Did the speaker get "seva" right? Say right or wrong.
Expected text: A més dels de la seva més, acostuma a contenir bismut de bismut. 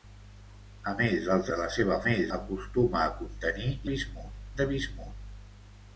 right